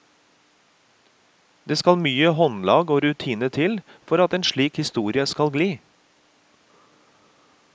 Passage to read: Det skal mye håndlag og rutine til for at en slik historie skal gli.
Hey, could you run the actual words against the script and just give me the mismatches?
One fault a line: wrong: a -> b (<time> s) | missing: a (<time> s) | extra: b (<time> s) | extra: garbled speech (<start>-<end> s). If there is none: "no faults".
no faults